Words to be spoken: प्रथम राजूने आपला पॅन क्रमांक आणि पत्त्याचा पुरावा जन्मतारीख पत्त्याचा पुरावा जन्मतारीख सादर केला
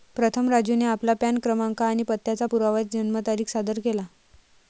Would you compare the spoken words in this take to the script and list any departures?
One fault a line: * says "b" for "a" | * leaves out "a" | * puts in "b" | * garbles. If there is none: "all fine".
* leaves out "पत्त्याचा पुरावा जन्मतारीख"